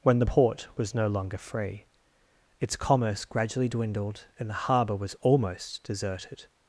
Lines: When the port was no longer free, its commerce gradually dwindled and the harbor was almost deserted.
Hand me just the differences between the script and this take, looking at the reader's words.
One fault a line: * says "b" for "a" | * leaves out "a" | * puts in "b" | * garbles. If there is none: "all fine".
all fine